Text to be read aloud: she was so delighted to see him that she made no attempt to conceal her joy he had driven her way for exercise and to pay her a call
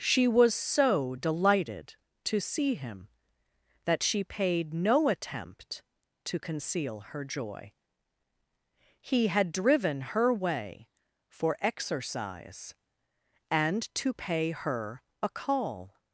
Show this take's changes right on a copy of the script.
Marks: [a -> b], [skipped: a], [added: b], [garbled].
she was so delighted to see him that she [made -> paid] no attempt to conceal her joy he had driven her way for exercise and to pay her a call